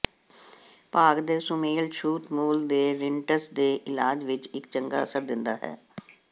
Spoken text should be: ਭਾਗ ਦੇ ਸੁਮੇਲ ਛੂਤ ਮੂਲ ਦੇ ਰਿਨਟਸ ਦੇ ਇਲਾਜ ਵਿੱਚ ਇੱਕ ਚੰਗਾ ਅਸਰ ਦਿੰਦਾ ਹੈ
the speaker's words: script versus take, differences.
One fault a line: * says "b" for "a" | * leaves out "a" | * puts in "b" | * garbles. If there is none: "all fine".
all fine